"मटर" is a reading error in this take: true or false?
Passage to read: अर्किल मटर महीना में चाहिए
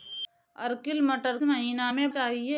false